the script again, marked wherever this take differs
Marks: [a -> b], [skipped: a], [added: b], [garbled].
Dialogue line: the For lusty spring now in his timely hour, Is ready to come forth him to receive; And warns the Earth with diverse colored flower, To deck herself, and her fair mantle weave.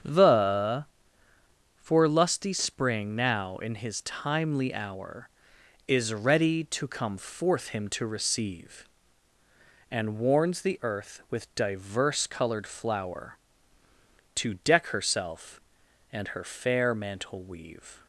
the For lusty spring now in his timely hour, Is ready to come forth him to receive; And warns the Earth with diverse colored flower, To deck herself, and her fair mantle weave.